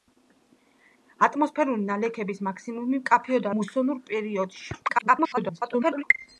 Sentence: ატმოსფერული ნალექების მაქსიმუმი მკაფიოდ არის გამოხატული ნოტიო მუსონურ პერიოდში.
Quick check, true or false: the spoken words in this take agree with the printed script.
false